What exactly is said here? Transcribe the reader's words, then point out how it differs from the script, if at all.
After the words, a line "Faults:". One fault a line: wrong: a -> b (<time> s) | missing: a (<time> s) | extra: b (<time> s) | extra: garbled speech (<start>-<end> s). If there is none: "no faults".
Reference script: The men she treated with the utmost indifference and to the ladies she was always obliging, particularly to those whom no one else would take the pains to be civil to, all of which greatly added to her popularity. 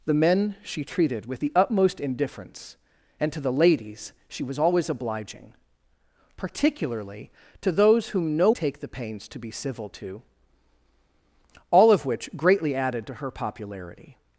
The men she treated with the utmost indifference and to the ladies she was always obliging, particularly to those whom no take the pains to be civil to, all of which greatly added to her popularity.
Faults:
missing: one else would (8.5 s)